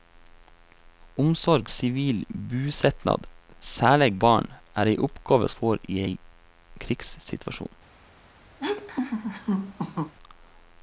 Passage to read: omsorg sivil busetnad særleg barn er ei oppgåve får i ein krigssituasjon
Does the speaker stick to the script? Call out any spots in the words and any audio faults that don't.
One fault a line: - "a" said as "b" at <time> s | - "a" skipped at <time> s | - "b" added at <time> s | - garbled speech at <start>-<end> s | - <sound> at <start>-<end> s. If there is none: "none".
- laugh at 8.6-10.1 s